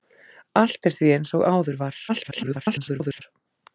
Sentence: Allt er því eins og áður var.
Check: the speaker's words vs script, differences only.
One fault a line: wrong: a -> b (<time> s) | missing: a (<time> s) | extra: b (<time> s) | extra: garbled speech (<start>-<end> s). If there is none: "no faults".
extra: garbled speech (2.1-3.2 s)